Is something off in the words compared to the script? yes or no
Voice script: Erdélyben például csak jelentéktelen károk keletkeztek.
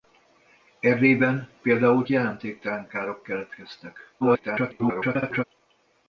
yes